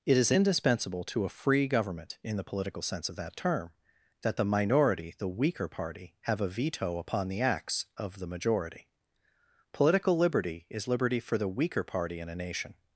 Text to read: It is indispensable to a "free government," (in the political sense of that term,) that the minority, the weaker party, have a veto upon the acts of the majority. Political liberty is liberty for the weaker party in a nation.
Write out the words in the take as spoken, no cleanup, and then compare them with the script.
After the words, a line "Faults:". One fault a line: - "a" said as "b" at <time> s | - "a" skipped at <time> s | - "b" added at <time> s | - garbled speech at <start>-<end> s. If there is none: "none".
It is indispensable to a "free government," (in the political sense of that term,) that the minority, the weaker party, have a veto upon the acts of the majority. Political liberty is liberty for the weaker party in a nation.
Faults:
none